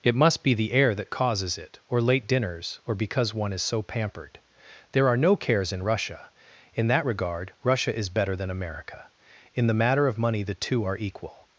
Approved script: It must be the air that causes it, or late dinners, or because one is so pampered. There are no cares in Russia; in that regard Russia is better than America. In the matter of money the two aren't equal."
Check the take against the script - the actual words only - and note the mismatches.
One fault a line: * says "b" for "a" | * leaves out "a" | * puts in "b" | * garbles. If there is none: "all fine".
* says "are" for "aren't"